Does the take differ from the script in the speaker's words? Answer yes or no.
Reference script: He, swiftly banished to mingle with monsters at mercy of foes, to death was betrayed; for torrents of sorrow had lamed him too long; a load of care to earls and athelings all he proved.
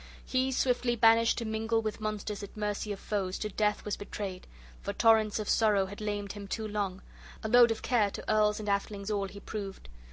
no